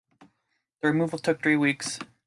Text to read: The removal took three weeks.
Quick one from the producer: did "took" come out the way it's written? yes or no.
yes